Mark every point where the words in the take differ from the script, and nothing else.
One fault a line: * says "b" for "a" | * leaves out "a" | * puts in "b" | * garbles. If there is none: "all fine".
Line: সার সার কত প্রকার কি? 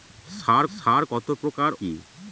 all fine